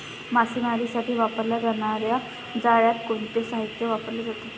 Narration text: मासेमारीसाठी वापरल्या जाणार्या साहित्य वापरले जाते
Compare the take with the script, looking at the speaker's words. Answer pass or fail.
fail